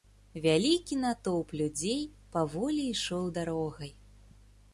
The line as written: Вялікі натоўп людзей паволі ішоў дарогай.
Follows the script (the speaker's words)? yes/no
yes